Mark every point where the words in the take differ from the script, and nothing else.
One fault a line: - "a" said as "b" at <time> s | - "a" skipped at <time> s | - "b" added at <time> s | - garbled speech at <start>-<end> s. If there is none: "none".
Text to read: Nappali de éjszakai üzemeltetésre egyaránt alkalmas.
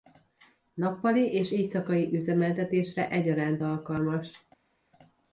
- "de" said as "és" at 1.3 s